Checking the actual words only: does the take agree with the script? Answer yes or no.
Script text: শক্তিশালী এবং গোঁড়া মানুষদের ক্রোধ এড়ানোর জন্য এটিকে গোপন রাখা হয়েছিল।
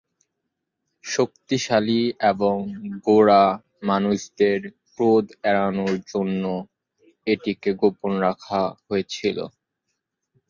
yes